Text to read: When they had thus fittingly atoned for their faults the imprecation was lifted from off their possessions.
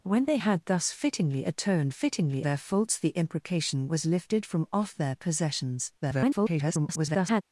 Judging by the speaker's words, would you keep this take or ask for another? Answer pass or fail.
fail